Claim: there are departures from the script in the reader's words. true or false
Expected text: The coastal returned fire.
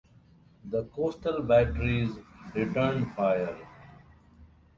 true